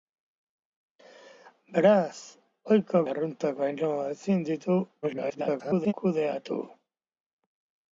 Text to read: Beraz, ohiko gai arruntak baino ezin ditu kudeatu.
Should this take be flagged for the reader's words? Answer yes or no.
yes